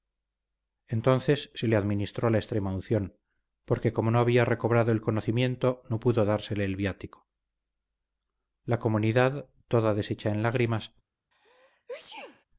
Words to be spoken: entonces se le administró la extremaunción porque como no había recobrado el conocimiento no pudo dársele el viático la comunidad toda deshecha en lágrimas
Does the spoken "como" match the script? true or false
true